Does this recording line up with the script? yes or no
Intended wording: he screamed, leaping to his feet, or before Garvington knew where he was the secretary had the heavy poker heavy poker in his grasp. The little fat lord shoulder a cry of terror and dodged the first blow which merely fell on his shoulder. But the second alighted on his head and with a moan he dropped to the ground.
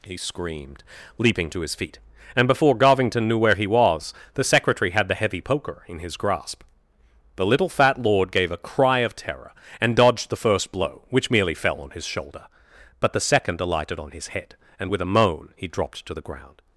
no